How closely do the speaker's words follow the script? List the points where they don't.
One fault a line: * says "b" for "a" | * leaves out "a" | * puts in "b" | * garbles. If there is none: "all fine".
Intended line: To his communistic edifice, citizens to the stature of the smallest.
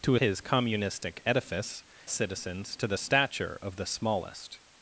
all fine